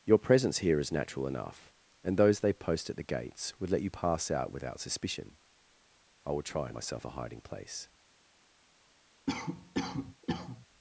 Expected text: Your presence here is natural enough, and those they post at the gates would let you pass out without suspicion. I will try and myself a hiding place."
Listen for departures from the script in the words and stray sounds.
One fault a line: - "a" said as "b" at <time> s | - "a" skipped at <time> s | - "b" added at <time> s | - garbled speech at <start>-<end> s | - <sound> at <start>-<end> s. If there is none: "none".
- cough at 9.3-10.7 s